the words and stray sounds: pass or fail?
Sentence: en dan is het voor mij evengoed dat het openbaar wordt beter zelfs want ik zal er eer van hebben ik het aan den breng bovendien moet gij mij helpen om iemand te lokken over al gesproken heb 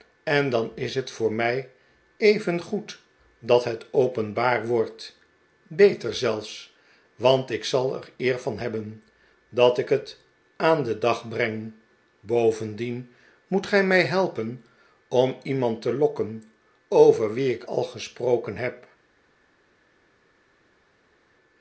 fail